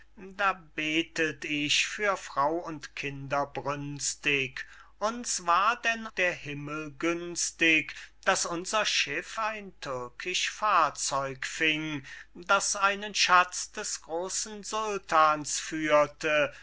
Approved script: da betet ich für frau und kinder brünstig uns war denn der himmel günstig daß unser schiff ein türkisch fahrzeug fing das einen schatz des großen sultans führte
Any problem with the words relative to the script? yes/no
no